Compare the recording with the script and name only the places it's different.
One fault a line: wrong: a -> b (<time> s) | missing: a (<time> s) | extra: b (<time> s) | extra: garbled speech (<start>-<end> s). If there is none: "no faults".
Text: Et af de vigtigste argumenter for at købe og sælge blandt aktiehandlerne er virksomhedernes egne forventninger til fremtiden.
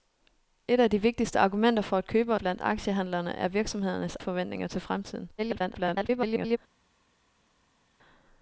missing: og sælge (2.4 s)
missing: egne (4.2 s)
extra: garbled speech (5.4-6.6 s)